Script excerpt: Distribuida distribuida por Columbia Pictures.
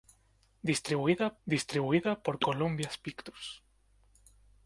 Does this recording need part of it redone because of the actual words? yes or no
no